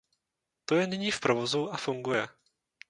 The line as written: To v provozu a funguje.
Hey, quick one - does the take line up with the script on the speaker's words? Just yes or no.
no